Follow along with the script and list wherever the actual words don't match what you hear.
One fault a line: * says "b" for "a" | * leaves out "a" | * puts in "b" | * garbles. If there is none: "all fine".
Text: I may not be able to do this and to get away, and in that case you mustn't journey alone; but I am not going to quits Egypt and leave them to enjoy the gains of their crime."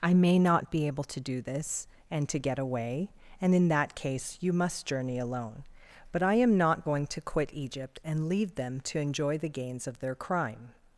* says "must" for "mustn't"
* says "quit" for "quits"